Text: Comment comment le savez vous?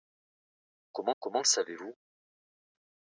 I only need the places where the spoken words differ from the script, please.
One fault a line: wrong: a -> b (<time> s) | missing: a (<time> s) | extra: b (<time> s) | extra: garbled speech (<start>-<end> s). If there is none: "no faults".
no faults